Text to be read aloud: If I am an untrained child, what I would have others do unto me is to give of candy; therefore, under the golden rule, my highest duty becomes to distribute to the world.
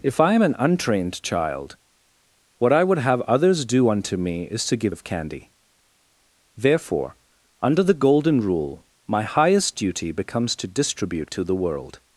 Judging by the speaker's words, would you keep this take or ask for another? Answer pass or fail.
pass